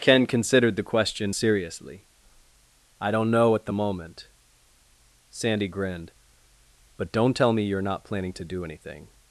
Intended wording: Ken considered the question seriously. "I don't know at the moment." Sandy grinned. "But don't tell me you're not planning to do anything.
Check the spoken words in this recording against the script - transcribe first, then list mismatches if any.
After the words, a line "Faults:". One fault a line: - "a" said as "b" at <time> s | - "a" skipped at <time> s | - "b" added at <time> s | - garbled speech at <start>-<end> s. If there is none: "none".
Ken considered the question seriously. "I don't know at the moment." Sandy grinned. "But don't tell me you're not planning to do anything.
Faults:
none